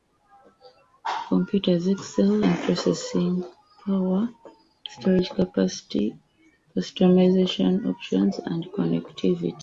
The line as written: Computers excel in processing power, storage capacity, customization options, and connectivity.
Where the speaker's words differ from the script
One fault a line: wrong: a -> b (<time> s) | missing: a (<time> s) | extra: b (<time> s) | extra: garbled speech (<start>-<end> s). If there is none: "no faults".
no faults